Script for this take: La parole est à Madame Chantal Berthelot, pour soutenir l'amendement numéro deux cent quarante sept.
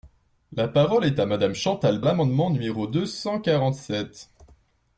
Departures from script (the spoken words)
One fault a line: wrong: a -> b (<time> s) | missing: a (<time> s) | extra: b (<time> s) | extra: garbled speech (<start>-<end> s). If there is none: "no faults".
missing: Berthelot pour soutenir (2.0 s)